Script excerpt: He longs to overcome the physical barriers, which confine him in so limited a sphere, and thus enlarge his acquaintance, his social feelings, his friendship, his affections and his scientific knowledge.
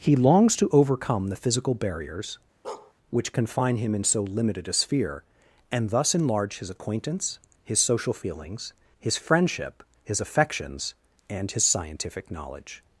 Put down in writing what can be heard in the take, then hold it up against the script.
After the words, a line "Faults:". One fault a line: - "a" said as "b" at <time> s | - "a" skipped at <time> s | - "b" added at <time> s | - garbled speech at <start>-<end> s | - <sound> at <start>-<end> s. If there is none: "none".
He longs to overcome the physical barriers, which confine him in so limited a sphere, and thus enlarge his acquaintance, his social feelings, his friendship, his affections and his scientific knowledge.
Faults:
- bark at 2.6-2.9 s